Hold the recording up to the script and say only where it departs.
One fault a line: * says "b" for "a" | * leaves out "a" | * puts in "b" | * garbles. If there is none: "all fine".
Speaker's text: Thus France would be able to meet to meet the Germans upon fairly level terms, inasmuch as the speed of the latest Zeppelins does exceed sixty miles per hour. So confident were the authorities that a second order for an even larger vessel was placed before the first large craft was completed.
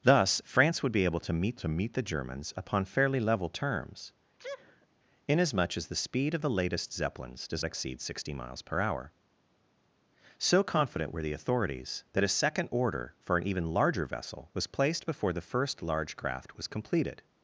all fine